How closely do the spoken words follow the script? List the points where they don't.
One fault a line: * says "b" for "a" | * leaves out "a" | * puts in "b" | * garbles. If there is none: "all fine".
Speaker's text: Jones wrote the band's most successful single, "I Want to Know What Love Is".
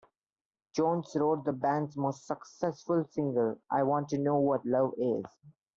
all fine